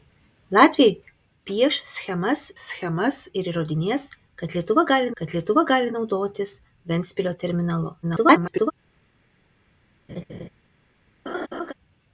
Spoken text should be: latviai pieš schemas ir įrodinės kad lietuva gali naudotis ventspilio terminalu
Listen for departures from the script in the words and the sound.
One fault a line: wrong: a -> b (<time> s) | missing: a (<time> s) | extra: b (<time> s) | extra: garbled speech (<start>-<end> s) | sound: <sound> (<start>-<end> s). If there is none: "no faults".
extra: schemas (2.6 s)
extra: kad lietuva gali (5.2 s)
extra: garbled speech (8.0-8.7 s)
sound: laugh (10.1-10.5 s)
sound: laugh (11.3-11.7 s)